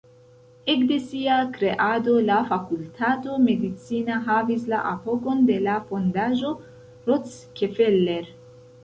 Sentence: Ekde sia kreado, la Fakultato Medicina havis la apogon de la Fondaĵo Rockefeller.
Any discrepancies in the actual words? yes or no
no